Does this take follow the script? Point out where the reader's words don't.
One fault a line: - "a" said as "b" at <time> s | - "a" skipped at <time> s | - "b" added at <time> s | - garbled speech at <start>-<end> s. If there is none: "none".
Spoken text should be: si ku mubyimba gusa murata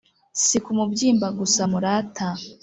none